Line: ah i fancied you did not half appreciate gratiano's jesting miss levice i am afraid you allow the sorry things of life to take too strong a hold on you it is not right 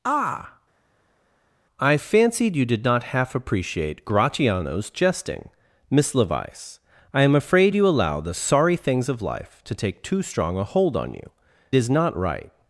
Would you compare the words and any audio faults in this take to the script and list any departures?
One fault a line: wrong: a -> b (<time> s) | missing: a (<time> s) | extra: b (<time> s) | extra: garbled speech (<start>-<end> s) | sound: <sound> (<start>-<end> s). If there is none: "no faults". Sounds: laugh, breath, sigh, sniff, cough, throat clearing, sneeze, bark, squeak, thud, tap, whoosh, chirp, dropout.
missing: it (11.3 s)